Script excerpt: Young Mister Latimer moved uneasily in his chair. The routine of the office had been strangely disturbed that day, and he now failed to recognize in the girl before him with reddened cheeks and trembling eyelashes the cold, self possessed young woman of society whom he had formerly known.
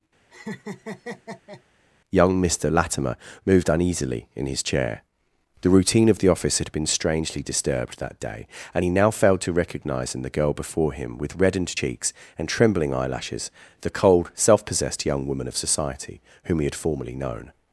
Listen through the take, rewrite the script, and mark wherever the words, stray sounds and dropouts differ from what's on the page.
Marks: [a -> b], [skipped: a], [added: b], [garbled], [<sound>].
[laugh] Young Mister Latimer moved uneasily in his chair. The routine of the office had been strangely disturbed that day, and he now failed to recognize in the girl before him with reddened cheeks and trembling eyelashes the cold, self possessed young woman of society whom he had formerly known.